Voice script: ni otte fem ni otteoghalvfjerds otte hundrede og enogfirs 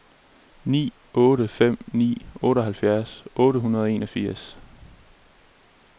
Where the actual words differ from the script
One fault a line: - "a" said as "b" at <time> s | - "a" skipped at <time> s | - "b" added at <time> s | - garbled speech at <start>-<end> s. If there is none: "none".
none